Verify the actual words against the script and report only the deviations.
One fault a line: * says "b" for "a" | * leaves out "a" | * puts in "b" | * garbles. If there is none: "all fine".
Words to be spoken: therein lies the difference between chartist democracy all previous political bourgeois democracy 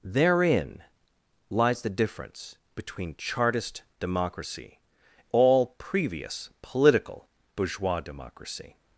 all fine